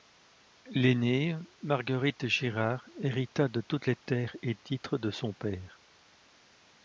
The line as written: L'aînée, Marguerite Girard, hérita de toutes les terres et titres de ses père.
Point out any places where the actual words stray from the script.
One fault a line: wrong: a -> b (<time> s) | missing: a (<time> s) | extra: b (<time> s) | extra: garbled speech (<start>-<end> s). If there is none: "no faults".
wrong: ses -> son (5.1 s)